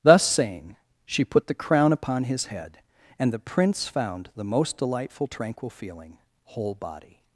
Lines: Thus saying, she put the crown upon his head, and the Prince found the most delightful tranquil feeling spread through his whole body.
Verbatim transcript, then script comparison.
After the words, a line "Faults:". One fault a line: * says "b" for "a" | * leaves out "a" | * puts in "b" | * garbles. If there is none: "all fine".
Thus saying, she put the crown upon his head, and the Prince found the most delightful tranquil feeling whole body.
Faults:
* leaves out "spread through his"